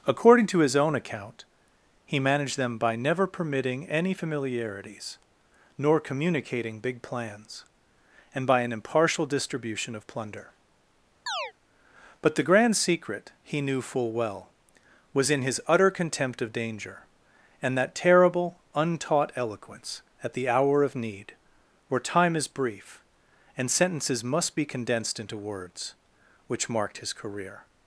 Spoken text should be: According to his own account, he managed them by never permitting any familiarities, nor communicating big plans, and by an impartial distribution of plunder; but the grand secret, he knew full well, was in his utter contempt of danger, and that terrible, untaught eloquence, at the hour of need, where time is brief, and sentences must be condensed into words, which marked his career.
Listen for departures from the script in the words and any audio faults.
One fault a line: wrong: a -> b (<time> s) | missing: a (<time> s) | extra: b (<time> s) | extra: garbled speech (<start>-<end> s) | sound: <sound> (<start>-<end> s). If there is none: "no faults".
sound: chirp (11.3-11.5 s)